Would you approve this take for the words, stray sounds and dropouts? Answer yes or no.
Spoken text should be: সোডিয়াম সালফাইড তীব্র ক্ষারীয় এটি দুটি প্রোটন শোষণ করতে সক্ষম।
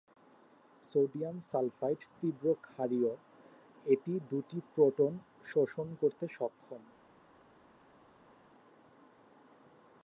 yes